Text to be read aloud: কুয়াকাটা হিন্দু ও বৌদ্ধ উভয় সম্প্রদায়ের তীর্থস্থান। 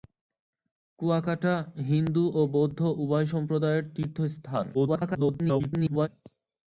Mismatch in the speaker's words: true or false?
true